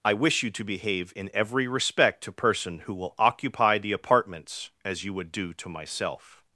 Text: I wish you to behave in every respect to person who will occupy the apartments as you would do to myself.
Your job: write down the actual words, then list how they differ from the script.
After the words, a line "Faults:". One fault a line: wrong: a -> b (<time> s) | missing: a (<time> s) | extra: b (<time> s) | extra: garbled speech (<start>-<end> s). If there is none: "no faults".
I wish you to behave in every respect to person who will occupy the apartments as you would do to myself.
Faults:
no faults